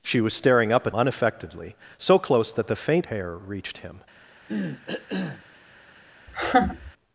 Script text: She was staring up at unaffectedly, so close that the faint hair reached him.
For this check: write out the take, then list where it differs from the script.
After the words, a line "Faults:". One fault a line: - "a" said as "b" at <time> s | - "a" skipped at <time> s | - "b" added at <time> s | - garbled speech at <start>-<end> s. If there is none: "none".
She was staring up at unaffectedly, so close that the faint hair reached him.
Faults:
none